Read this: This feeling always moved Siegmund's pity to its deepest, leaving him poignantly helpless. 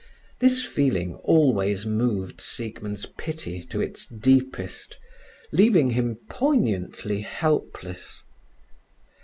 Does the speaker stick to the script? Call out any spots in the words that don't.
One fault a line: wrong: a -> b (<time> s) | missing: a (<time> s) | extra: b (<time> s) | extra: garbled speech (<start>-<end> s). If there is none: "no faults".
no faults